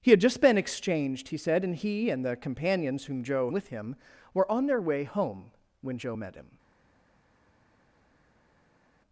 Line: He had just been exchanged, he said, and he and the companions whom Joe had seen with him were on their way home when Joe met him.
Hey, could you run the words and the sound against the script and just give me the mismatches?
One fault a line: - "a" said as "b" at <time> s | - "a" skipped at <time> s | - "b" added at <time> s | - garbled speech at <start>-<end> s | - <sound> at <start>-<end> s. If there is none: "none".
- "had seen" skipped at 3.5 s